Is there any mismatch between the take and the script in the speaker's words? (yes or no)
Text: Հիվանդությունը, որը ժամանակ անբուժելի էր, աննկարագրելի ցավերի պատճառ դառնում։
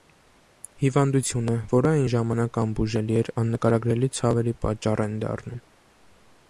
yes